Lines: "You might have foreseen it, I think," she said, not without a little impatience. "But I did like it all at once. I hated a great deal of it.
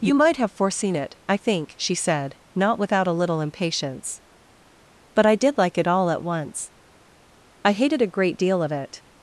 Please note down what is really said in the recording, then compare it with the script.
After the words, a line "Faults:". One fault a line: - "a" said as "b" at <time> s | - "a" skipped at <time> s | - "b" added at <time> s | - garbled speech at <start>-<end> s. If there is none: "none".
"You might have foreseen it, I think," she said, not without a little impatience. "But I did like it all at once. I hated a great deal of it.
Faults:
none